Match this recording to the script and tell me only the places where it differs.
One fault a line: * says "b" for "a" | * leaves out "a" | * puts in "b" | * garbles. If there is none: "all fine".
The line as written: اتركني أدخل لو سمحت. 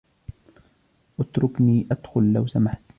all fine